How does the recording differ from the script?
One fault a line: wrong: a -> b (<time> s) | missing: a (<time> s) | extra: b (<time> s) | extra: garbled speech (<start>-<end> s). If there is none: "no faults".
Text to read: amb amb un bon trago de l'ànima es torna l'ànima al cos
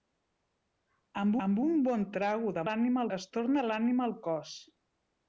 no faults